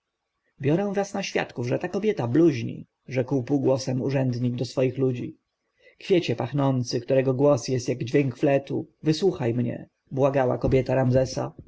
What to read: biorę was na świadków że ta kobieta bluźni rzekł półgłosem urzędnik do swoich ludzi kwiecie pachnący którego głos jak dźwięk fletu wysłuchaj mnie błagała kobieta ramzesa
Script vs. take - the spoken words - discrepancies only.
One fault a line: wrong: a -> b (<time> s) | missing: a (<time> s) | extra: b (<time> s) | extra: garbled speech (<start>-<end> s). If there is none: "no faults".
extra: jest (7.7 s)